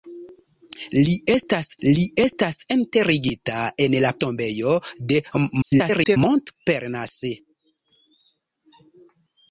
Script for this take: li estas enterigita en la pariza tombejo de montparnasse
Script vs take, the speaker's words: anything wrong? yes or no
yes